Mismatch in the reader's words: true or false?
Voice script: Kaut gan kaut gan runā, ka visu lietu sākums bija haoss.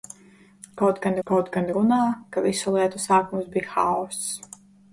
false